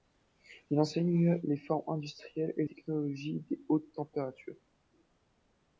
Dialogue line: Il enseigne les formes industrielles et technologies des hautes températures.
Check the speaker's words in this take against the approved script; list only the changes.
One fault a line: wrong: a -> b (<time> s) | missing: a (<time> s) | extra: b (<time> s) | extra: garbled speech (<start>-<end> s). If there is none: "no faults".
no faults